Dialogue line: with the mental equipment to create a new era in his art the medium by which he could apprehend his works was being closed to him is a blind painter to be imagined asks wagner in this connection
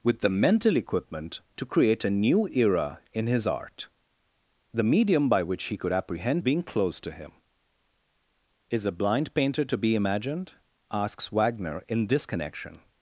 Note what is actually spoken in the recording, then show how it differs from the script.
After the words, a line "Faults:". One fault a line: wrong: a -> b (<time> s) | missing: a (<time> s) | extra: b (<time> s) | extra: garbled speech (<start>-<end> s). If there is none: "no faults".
with the mental equipment to create a new era in his art the medium by which he could apprehend being closed to him is a blind painter to be imagined asks wagner in this connection
Faults:
missing: his works was (6.4 s)